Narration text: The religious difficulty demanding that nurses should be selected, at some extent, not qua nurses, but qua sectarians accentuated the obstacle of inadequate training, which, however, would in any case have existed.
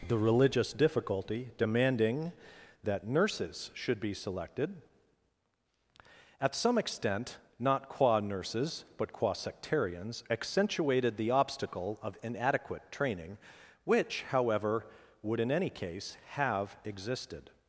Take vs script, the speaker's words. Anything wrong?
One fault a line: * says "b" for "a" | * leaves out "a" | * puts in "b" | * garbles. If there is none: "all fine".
all fine